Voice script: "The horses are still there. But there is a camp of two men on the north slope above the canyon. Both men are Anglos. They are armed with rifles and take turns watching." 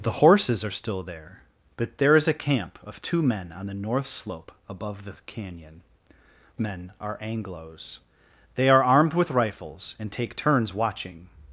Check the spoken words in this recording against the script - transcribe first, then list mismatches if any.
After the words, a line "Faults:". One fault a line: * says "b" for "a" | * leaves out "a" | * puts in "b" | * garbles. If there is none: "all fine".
"The horses are still there. But there is a camp of two men on the north slope above the canyon. Men are Anglos. They are armed with rifles and take turns watching."
Faults:
* leaves out "Both"